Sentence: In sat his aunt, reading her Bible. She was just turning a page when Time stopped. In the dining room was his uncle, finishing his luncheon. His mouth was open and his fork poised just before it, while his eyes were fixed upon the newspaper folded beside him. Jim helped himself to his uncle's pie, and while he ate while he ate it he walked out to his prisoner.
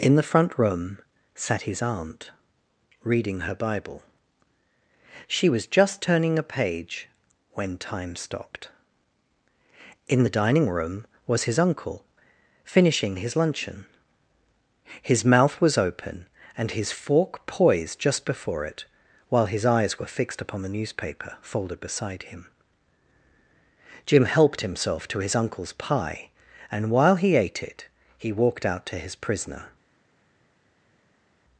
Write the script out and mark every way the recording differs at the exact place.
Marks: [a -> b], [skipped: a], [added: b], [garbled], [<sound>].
In [added: the front room] sat his aunt, reading her Bible. She was just turning a page when Time stopped. In the dining room was his uncle, finishing his luncheon. His mouth was open and his fork poised just before it, while his eyes were fixed upon the newspaper folded beside him. Jim helped himself to his uncle's pie, and while he ate [skipped: while he ate] it he walked out to his prisoner.